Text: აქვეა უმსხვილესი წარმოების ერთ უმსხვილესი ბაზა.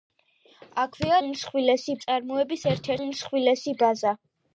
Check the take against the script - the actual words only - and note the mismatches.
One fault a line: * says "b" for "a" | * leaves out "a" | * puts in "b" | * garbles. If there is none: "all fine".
all fine